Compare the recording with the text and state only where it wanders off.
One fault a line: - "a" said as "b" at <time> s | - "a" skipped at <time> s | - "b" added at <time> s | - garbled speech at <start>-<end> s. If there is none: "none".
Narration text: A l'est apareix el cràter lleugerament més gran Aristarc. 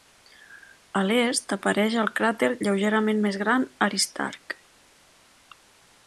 none